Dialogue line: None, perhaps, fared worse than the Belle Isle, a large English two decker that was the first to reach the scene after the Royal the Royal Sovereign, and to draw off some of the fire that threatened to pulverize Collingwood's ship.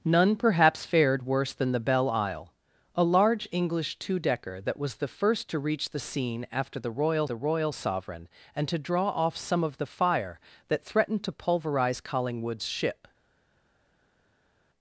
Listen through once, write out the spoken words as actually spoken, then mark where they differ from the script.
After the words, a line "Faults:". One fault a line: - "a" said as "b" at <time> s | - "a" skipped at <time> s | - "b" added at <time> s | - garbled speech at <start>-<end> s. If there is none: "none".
None, perhaps, fared worse than the Belle Isle, a large English two decker that was the first to reach the scene after the Royal the Royal Sovereign, and to draw off some of the fire that threatened to pulverize Collingwood's ship.
Faults:
none